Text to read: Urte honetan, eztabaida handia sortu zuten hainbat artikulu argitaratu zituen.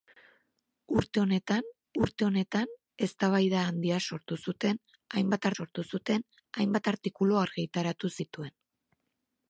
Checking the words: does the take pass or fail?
fail